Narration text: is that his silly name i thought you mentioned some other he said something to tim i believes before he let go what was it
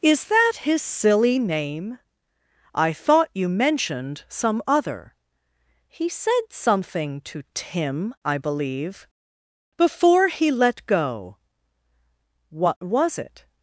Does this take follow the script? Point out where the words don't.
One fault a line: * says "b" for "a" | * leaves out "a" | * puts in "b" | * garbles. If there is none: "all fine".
* says "believe" for "believes"